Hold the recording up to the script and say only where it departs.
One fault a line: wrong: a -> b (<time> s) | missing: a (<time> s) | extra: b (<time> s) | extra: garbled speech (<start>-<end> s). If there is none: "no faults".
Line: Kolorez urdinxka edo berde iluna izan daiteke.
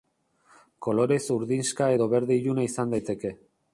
no faults